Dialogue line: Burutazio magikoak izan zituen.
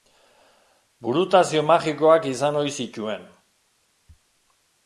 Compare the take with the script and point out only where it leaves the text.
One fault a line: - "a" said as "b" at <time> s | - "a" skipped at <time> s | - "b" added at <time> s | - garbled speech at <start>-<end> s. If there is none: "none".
- "ohi" added at 2.6 s